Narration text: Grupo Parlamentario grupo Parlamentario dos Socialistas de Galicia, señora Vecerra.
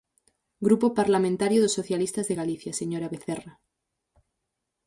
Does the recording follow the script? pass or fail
fail